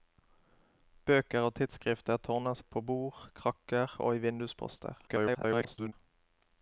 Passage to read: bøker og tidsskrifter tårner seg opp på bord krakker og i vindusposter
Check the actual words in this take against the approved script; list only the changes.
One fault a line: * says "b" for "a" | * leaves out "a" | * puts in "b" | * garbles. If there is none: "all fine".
* leaves out "seg"
* garbles